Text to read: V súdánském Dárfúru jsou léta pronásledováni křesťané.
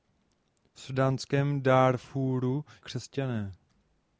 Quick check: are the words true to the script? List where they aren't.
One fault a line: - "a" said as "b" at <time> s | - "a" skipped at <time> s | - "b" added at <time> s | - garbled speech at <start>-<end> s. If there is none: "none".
- "jsou léta pronásledováni" skipped at 2.6 s